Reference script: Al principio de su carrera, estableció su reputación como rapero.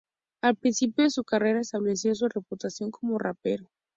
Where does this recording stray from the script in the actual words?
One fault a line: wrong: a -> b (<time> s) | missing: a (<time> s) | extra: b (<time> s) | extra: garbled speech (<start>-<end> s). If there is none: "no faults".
no faults